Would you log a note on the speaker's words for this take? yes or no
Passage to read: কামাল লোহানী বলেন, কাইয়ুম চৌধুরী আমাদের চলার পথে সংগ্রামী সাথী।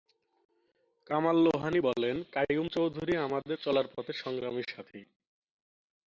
no